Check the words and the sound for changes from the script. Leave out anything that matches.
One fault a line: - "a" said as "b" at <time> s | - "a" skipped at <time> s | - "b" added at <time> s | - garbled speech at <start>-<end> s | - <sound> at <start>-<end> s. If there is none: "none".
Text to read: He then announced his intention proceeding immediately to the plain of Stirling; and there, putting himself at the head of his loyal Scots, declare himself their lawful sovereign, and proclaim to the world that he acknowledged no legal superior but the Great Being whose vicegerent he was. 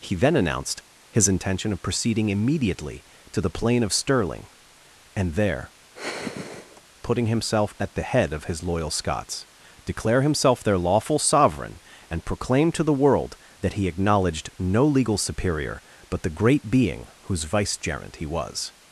- "of" added at 1.7 s
- sigh at 5.9-6.8 s